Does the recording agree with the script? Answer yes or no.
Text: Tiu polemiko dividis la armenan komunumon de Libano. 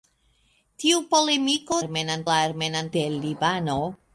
no